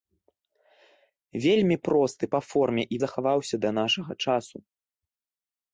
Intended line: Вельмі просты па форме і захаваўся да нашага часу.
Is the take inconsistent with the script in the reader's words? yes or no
no